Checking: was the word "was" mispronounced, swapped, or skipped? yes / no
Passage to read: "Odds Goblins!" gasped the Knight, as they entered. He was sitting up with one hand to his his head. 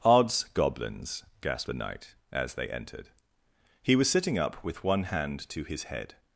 no